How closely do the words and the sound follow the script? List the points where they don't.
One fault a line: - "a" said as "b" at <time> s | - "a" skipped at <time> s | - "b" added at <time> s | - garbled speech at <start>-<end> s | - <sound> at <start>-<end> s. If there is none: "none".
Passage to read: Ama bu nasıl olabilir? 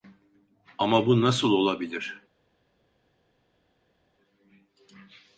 none